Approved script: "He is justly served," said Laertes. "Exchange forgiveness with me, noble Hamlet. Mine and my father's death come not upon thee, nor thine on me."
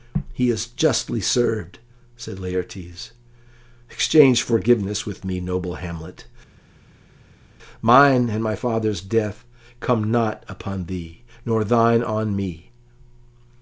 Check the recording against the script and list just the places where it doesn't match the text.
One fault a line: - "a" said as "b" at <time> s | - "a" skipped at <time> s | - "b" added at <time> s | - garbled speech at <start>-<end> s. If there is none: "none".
none